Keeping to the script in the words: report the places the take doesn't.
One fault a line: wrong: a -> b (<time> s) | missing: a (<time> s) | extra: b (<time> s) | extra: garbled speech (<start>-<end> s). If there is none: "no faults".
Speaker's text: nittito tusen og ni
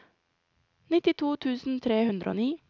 extra: tre hundre (1.8 s)